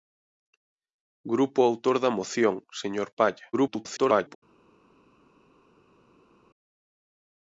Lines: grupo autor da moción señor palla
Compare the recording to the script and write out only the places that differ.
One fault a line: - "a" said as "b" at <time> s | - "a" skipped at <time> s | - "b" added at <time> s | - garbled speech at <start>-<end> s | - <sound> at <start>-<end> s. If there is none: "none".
- garbled speech at 3.5-4.4 s